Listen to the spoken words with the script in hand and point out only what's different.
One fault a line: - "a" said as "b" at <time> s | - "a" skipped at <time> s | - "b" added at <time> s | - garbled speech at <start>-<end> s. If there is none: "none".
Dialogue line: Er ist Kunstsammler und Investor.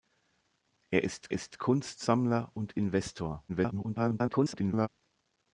- "ist" added at 1.3 s
- garbled speech at 3.5-4.9 s